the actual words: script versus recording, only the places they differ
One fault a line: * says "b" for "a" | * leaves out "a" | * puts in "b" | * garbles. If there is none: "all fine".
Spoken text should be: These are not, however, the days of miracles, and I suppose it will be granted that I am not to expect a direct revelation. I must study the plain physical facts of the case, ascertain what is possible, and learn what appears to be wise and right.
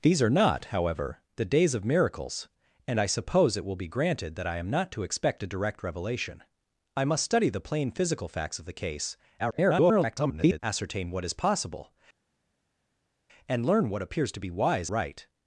* garbles
* leaves out "and"